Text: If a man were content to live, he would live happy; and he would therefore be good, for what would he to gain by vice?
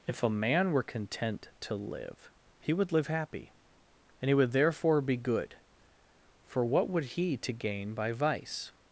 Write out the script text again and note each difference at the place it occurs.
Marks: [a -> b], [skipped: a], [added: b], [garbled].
If a man were content to live, he would live happy; and he would therefore be good, for what would he to gain by vice?